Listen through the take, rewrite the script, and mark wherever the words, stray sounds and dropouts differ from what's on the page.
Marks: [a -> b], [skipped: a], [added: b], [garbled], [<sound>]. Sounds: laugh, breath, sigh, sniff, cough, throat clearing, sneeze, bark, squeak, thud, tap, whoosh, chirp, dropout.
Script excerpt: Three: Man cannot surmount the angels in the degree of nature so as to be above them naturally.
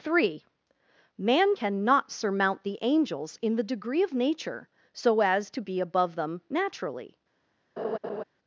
Three: Man cannot surmount the angels in the degree of nature so as to be above them naturally. [laugh]